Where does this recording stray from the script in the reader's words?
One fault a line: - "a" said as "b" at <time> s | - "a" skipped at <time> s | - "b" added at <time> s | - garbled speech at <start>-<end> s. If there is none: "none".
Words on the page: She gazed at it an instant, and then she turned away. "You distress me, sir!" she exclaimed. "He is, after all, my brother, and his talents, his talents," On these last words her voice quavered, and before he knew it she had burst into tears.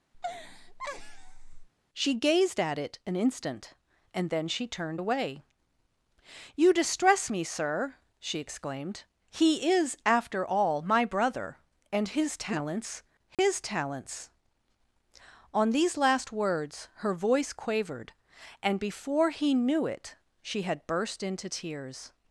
none